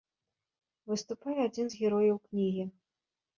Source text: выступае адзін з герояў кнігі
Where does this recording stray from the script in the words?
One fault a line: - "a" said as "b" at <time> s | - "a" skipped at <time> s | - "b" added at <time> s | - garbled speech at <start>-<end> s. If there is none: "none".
none